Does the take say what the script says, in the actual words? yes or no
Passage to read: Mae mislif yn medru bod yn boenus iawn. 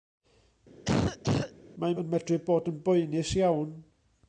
no